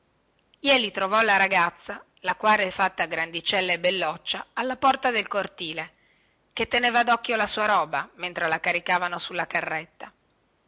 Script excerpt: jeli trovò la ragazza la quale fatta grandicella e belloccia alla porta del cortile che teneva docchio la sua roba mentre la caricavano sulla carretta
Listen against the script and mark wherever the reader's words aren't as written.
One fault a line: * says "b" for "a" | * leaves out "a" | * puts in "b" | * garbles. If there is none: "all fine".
all fine